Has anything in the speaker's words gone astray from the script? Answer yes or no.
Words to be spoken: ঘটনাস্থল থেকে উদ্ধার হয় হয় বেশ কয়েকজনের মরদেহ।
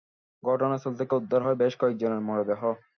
yes